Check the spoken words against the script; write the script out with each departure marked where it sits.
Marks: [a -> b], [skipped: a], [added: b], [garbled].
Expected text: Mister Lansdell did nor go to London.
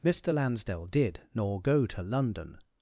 Mister Lansdell did nor go to London.